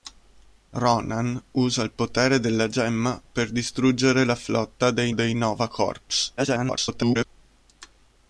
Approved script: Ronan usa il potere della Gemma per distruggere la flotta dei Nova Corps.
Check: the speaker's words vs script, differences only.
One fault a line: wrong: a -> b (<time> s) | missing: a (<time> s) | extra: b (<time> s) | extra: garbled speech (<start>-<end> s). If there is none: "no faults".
extra: dei (5.1 s)
extra: garbled speech (6.4-7.3 s)